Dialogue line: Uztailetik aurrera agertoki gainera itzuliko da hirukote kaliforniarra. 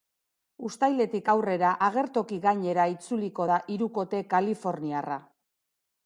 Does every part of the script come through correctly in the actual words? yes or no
yes